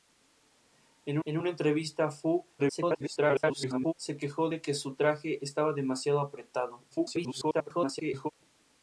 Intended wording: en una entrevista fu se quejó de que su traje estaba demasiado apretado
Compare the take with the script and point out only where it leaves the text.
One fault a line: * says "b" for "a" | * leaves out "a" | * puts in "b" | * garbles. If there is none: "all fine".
* puts in "en"
* garbles
* garbles